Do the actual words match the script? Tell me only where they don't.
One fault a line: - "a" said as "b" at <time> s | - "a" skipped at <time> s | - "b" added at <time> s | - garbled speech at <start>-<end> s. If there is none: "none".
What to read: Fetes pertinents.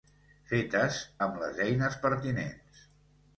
- "amb les eines" added at 1.3 s